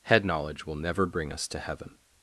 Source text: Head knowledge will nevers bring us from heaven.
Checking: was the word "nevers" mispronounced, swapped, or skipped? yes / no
yes